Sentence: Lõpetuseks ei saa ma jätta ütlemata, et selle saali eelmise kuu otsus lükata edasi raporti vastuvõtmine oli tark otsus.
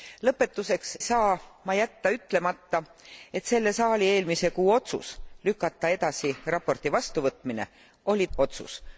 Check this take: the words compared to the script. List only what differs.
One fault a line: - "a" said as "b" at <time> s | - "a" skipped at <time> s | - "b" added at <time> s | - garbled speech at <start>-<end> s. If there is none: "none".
- "ei" skipped at 1.0 s
- "tark" skipped at 8.3 s